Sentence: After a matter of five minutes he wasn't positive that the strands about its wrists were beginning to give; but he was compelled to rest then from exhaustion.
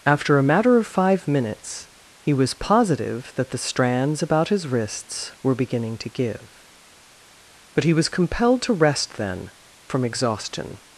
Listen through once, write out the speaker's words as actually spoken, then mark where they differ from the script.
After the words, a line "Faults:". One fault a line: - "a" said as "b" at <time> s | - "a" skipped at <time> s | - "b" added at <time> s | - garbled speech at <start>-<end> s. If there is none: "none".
After a matter of five minutes he was positive that the strands about his wrists were beginning to give; but he was compelled to rest then from exhaustion.
Faults:
- "wasn't" said as "was" at 2.3 s
- "its" said as "his" at 4.5 s